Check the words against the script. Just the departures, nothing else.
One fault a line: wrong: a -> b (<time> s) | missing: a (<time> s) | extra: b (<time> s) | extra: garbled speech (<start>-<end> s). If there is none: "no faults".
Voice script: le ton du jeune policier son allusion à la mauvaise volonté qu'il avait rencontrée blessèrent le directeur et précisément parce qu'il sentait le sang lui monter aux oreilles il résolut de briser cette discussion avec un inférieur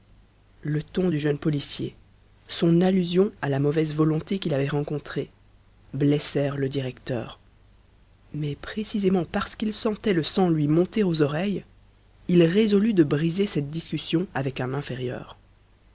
wrong: et -> mais (8.3 s)